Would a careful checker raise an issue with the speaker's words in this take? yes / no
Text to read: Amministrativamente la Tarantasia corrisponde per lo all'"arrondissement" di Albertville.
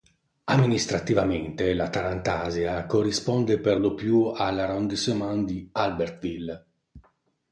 yes